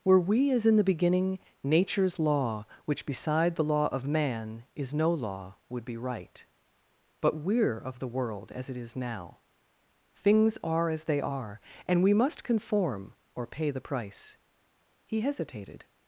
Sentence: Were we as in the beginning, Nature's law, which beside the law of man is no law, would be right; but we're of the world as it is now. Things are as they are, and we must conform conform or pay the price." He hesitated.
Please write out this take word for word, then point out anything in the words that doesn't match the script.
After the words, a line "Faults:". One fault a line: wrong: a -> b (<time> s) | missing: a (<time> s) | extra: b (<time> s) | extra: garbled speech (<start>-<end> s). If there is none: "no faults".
Were we as in the beginning, Nature's law, which beside the law of man is no law, would be right; but we're of the world as it is now. Things are as they are, and we must conform or pay the price." He hesitated.
Faults:
missing: conform (13.1 s)